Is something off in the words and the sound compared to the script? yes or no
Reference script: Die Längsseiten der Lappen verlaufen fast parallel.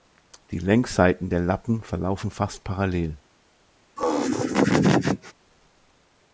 yes